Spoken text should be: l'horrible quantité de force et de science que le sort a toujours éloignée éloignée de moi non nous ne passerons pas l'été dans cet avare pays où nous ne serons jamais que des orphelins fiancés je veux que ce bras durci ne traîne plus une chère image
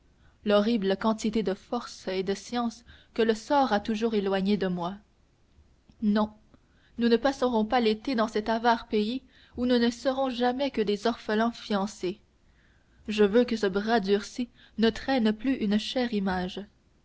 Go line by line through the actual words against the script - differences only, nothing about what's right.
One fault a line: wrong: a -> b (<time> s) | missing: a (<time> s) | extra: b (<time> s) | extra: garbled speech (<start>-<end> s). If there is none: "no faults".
missing: éloignée (4.6 s)